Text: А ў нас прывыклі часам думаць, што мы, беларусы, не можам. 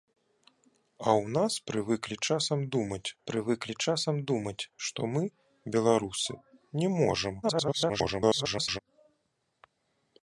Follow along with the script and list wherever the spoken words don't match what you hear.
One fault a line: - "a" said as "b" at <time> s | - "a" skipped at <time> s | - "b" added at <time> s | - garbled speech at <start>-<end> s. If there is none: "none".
- "прывыклі часам думаць" added at 3.3 s
- garbled speech at 7.4-8.8 s